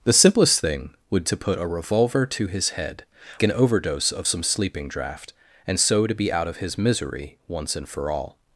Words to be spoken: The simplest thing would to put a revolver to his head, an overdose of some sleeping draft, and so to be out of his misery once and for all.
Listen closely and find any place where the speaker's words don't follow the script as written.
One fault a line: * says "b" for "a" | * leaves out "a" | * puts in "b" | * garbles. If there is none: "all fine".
all fine